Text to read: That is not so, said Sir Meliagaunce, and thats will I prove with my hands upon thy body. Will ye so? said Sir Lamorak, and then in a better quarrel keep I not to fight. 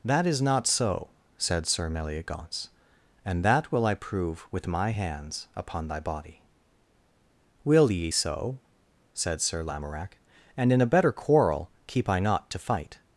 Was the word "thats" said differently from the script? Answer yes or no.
yes